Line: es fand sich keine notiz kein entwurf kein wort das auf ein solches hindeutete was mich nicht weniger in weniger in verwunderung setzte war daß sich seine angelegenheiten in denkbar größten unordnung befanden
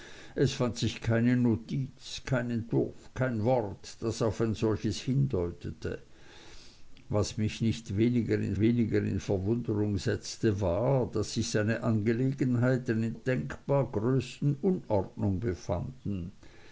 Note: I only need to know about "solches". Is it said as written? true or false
true